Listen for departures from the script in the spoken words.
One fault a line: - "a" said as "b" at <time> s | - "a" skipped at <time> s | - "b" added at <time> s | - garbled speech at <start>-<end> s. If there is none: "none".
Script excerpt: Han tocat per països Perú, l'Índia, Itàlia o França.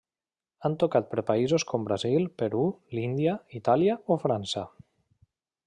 - "com Brasil" added at 1.7 s